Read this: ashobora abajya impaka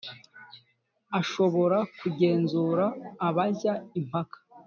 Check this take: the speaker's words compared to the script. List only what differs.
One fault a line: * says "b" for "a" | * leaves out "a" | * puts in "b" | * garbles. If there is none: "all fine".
* puts in "kugenzura"